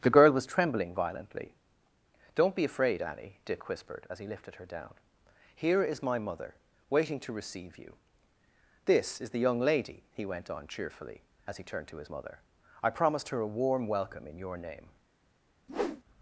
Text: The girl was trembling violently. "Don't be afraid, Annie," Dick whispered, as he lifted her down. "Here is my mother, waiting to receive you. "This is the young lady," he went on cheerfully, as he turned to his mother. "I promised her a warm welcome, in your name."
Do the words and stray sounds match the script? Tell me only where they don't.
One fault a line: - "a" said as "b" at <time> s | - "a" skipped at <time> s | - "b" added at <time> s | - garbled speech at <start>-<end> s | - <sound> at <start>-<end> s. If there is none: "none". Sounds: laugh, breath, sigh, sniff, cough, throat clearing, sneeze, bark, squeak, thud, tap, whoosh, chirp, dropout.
- whoosh at 15.7-16.0 s